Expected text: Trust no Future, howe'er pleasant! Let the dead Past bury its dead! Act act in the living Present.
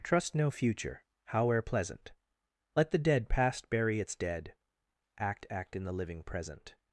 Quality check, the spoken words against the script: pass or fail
pass